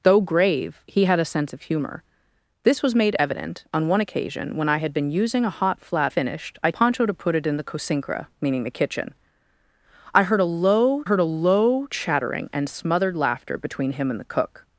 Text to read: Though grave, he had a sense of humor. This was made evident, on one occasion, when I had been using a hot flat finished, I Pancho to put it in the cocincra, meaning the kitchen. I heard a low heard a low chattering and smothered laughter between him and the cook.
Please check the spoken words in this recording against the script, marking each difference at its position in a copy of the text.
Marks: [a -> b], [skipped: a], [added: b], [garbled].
Though grave, he had a sense of humor. This was made evident, on one occasion, when I had been using a hot flat finished, I Pancho to put it in the cocincra, meaning the kitchen. I heard a low heard a low chattering and smothered laughter between him and the cook.